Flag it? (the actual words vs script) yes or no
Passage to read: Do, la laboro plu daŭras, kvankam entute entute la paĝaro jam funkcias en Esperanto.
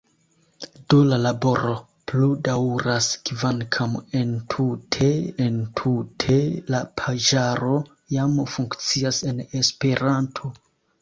no